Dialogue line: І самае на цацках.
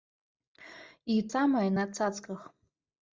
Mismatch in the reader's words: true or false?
false